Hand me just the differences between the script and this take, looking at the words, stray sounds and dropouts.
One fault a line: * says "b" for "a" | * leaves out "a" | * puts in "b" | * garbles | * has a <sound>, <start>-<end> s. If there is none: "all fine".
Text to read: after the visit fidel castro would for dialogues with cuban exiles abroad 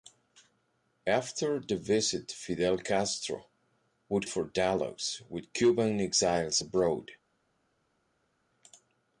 all fine